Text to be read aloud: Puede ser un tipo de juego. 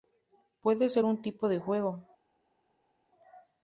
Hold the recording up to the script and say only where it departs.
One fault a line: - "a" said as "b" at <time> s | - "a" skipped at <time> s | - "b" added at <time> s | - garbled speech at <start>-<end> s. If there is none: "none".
none